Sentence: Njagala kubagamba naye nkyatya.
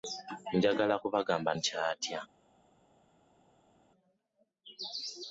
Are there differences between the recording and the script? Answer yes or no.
yes